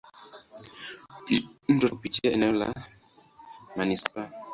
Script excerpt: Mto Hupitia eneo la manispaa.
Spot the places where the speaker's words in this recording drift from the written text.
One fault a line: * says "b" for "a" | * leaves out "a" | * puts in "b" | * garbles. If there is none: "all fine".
all fine